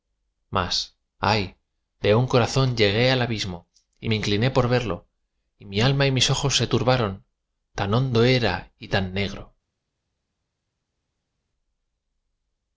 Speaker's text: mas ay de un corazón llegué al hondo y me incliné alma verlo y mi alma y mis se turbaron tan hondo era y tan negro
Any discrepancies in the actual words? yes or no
yes